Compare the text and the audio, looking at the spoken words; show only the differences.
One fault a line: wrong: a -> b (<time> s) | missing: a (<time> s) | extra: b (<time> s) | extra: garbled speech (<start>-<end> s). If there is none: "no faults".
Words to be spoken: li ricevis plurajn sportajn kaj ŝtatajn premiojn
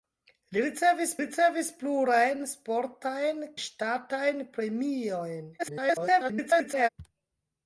extra: ricevis (1.2 s)
missing: kaj (3.5 s)
extra: garbled speech (5.6-6.9 s)